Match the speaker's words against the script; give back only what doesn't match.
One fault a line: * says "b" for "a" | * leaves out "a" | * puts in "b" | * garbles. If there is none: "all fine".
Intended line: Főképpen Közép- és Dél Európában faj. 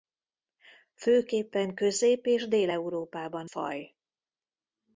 all fine